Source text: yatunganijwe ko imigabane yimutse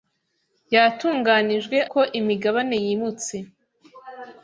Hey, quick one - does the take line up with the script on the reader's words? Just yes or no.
yes